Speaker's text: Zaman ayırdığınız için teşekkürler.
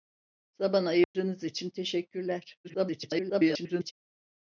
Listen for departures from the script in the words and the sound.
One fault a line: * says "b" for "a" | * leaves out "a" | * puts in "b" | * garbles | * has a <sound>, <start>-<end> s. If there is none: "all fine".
* has a dropout, 1.0-1.1 s
* garbles